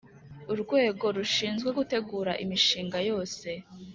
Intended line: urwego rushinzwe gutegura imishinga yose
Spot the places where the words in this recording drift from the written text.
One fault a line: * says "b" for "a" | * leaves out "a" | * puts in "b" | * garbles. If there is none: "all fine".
all fine